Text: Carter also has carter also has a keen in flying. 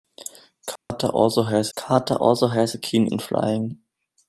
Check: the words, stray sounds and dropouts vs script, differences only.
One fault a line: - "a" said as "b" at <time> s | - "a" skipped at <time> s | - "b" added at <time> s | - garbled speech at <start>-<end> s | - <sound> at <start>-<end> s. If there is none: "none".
- dropout at 0.8-0.9 s